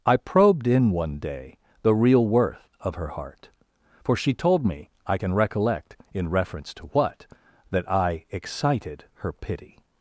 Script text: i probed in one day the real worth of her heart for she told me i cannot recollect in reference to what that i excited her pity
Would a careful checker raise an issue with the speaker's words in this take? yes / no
yes